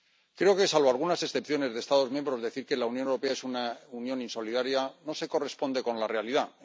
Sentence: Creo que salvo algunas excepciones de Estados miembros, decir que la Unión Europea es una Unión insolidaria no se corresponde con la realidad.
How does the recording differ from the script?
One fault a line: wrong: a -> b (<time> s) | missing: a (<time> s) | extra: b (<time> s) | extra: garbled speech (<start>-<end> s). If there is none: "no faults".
no faults